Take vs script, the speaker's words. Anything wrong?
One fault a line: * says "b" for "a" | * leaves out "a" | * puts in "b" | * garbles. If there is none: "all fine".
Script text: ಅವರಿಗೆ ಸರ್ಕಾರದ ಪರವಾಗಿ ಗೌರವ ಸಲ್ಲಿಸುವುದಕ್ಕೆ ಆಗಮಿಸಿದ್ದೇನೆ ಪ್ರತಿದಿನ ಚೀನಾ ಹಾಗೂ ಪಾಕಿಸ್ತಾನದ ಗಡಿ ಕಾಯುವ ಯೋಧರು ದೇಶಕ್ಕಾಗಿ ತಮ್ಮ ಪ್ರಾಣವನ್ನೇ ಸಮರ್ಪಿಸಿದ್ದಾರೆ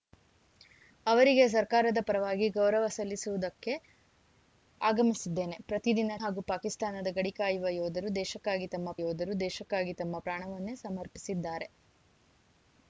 * leaves out "ಚೀನಾ"
* puts in "ಯೋಧರು ದೇಶಕ್ಕಾಗಿ ತಮ್ಮ"